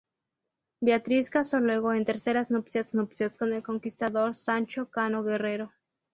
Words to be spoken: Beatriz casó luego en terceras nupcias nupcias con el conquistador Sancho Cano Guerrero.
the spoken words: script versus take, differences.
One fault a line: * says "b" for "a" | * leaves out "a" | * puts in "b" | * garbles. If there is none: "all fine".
all fine